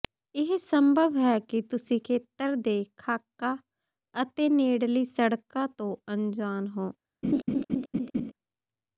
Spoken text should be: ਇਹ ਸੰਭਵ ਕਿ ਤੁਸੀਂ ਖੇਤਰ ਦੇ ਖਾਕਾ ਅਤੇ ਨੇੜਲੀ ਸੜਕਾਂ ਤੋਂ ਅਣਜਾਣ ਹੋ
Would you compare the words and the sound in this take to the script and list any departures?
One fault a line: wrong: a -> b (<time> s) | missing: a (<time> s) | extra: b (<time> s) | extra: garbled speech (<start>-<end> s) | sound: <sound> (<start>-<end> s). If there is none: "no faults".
extra: ਹੈ (1.2 s)
sound: laugh (7.2-8.3 s)